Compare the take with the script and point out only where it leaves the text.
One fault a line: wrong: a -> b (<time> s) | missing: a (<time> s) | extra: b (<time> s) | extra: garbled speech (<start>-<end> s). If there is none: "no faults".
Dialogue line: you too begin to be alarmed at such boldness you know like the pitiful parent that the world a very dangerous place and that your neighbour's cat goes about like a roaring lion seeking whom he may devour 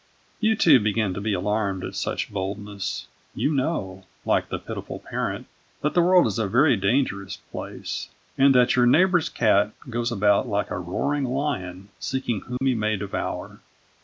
extra: is (6.2 s)